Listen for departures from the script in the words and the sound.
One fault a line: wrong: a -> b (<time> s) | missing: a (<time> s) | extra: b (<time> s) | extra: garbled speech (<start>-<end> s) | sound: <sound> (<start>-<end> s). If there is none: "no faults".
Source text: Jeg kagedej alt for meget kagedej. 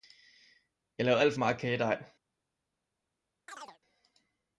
wrong: kagedej -> lavede (1.1 s)
sound: chirp (3.5-3.8 s)